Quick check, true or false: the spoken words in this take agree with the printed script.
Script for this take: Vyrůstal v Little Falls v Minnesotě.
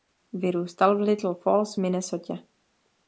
true